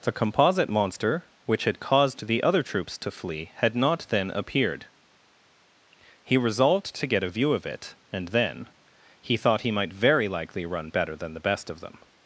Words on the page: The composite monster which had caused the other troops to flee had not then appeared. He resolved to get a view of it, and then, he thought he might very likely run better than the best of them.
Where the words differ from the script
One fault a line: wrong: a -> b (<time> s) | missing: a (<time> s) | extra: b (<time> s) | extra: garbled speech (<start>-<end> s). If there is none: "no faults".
no faults